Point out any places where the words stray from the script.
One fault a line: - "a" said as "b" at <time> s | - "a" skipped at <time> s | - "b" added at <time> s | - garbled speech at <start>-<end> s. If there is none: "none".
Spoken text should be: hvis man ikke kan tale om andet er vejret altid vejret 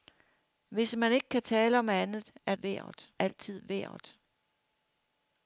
none